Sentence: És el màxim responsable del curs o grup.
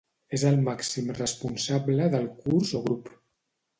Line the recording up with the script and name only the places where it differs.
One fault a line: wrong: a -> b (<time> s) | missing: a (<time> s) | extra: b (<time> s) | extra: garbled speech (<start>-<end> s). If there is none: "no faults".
no faults